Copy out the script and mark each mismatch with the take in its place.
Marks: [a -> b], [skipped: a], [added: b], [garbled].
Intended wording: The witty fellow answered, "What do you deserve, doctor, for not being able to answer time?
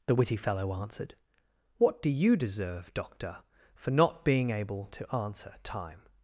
The witty fellow answered, "What do you deserve, doctor, for not being able to answer time?